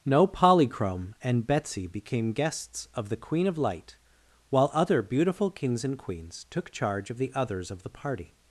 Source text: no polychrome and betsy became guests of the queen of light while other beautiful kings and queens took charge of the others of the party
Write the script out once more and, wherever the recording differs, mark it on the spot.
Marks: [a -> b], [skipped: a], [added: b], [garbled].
no polychrome and betsy became guests of the queen of light while other beautiful kings and queens took charge of the others of the party